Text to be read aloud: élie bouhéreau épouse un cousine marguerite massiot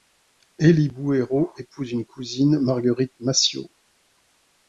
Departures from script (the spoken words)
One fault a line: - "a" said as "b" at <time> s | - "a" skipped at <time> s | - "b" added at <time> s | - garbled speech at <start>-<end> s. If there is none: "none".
- "un" said as "une" at 1.9 s